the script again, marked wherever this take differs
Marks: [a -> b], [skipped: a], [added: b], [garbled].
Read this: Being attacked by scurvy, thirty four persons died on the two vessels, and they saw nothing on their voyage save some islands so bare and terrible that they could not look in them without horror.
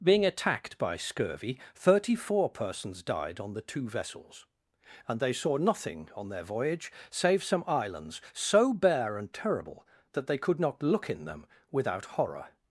Being attacked by scurvy, thirty four persons died on the two vessels, and they saw nothing on their voyage save some islands so bare and terrible that they could not look in them without horror.